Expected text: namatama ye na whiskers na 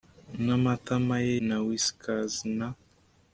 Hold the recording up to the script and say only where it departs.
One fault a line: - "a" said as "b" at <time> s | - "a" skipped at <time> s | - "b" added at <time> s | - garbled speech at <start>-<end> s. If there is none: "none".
none